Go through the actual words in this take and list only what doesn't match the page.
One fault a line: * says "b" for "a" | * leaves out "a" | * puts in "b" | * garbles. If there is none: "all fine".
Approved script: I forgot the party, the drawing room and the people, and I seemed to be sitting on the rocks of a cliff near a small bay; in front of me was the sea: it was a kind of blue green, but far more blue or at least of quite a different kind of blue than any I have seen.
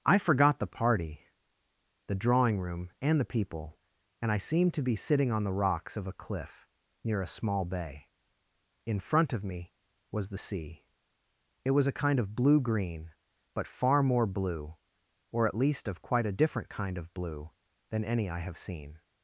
all fine